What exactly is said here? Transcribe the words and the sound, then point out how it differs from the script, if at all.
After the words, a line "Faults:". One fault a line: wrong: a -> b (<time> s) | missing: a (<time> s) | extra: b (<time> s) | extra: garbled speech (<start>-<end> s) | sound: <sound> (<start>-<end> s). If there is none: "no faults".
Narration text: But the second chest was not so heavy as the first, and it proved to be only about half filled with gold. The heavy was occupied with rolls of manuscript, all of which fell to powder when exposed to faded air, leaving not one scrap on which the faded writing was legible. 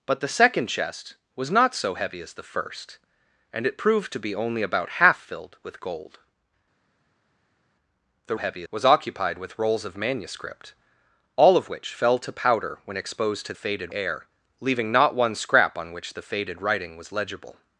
But the second chest was not so heavy as the first, and it proved to be only about half filled with gold. The heavy was occupied with rolls of manuscript, all of which fell to powder when exposed to faded air, leaving not one scrap on which the faded writing was legible.
Faults:
no faults